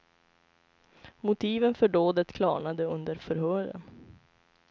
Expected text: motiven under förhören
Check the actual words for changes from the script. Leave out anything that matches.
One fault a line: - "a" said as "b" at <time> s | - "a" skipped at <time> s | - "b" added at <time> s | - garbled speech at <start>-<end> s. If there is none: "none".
- "för dådet klarnade" added at 1.7 s